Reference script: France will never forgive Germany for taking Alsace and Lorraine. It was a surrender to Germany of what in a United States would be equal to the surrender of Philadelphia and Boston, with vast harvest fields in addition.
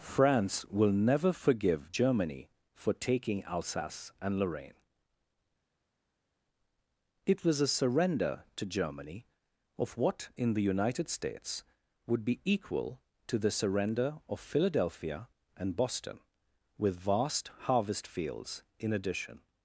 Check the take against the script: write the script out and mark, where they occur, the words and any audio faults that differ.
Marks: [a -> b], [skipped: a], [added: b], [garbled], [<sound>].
France will never forgive Germany for taking Alsace and Lorraine. It was a surrender to Germany of what in [a -> the] United States would be equal to the surrender of Philadelphia and Boston, with vast harvest fields in addition.